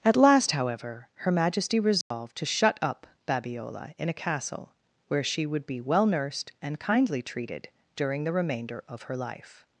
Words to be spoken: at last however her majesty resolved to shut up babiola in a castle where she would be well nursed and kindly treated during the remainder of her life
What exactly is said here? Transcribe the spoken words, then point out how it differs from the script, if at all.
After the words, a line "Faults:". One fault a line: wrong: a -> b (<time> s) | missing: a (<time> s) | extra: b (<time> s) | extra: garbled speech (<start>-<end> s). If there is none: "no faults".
at last however her majesty resolved to shut up babiola in a castle where she would be well nursed and kindly treated during the remainder of her life
Faults:
no faults